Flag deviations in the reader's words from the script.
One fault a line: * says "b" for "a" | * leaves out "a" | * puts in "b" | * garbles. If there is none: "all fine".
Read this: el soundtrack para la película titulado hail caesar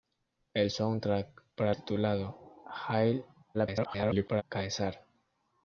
* leaves out "la película"
* garbles